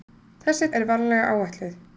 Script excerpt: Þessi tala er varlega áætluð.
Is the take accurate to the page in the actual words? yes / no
no